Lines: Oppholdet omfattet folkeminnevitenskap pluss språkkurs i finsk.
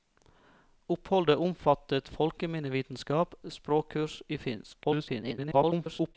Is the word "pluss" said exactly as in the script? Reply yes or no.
no